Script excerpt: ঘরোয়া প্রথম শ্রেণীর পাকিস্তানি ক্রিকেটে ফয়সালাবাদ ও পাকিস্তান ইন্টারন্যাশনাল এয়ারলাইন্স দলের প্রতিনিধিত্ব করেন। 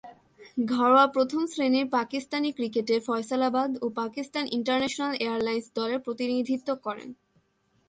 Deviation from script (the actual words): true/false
false